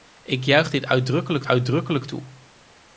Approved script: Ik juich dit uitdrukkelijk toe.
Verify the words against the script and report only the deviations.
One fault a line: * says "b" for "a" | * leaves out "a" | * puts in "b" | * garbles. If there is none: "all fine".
* puts in "uitdrukkelijk"